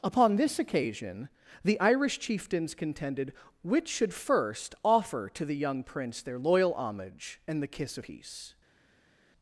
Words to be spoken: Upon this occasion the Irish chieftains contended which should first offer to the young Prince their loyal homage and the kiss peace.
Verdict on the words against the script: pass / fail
pass